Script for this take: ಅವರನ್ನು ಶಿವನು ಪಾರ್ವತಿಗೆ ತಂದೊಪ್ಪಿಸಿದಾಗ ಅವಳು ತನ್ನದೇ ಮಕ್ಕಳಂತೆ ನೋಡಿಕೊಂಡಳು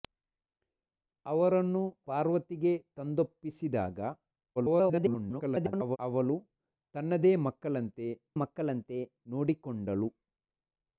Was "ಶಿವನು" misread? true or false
true